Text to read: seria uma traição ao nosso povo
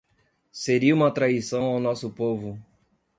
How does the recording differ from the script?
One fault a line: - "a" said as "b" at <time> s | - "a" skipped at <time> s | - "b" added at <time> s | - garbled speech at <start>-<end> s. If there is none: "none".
none